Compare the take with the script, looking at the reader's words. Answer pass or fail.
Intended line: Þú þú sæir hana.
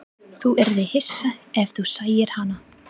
fail